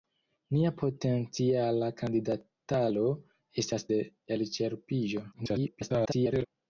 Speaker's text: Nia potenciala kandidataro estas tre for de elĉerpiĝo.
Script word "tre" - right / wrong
wrong